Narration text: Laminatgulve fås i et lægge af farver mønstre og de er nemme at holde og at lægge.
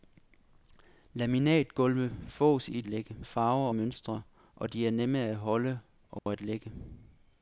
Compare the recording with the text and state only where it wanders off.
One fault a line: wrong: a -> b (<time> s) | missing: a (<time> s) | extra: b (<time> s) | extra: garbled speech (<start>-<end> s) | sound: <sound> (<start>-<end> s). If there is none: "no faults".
sound: dropout (6.2-6.3 s)